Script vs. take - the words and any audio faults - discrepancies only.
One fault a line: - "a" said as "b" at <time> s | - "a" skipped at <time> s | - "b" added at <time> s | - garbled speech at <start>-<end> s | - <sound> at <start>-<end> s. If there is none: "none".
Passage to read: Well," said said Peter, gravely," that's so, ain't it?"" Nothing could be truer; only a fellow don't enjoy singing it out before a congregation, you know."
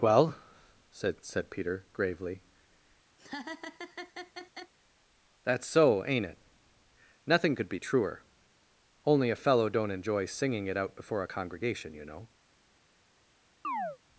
- laugh at 3.2-4.7 s
- chirp at 13.6-14.0 s